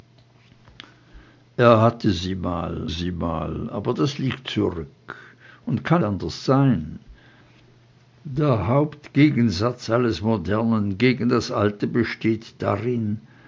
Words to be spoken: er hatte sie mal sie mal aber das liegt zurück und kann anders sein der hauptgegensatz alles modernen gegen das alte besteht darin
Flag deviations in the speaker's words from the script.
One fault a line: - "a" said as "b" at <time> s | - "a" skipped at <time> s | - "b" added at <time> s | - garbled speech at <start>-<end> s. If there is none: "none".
none